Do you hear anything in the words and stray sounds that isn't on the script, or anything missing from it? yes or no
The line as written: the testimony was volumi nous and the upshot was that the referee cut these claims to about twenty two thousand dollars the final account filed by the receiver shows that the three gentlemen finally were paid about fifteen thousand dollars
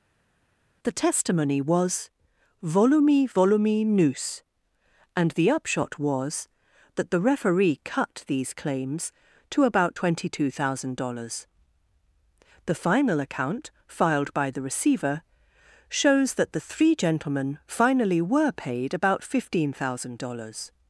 yes